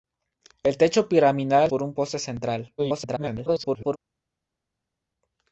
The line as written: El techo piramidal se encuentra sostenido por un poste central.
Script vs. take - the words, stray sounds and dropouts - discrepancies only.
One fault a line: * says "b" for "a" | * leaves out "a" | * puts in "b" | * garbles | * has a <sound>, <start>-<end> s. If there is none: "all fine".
* leaves out "se encuentra sostenido"
* garbles